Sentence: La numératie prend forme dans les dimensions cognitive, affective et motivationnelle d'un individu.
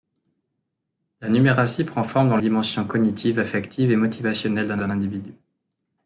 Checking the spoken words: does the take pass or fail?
fail